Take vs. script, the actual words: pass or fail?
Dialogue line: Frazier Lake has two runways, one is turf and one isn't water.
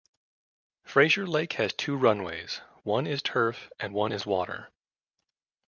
fail